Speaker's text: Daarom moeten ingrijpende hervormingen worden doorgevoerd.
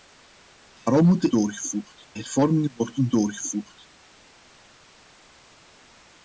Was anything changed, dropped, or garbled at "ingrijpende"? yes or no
yes